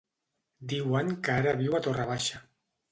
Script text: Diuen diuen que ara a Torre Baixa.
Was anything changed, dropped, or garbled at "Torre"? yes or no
no